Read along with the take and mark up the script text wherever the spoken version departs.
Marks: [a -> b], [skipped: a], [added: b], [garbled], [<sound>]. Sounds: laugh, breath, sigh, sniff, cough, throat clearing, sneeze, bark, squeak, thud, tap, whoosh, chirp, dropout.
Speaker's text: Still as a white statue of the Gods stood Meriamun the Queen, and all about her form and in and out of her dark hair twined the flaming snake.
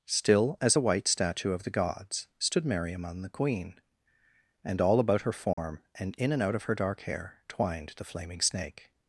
Still as a white statue of the Gods stood Meriamun the Queen, and all about her form [dropout] and in and out of her dark hair twined the flaming snake.